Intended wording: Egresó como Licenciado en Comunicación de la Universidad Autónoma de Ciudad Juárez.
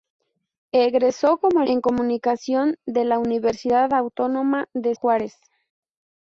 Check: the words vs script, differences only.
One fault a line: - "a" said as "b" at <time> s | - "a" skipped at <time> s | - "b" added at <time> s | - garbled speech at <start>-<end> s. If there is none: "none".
- "Licenciado" skipped at 1.6 s
- "Ciudad" skipped at 4.9 s